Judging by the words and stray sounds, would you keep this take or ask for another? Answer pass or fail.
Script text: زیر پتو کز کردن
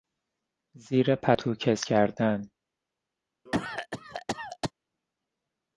fail